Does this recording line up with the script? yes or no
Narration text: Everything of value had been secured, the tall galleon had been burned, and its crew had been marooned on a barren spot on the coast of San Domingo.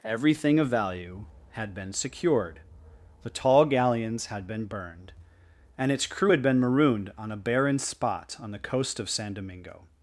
no